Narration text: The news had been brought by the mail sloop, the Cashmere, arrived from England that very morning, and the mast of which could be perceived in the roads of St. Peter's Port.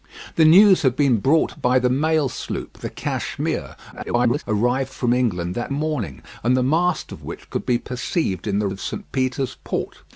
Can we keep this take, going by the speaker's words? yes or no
no